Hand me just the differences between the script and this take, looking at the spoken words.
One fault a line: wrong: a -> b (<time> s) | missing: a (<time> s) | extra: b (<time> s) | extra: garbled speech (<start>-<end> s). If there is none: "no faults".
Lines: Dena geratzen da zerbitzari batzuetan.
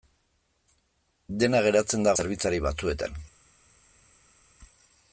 no faults